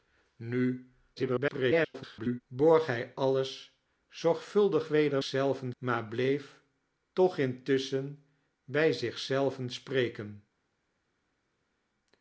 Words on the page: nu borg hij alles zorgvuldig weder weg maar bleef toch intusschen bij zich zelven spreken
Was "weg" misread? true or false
true